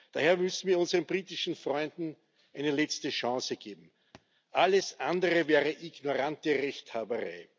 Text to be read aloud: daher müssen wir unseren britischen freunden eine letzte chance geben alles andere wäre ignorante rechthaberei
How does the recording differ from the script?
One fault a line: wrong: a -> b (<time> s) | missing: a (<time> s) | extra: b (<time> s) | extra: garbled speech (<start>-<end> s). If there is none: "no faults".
no faults